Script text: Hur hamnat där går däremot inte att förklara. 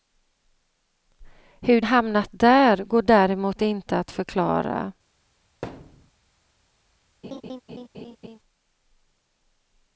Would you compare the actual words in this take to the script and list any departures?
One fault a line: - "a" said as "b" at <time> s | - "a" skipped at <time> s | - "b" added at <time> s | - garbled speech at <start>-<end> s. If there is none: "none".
none